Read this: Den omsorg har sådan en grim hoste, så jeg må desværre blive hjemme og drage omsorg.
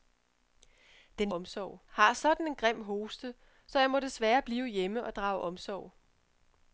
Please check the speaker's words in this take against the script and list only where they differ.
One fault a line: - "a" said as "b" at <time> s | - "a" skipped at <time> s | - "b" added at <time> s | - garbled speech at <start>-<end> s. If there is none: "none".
none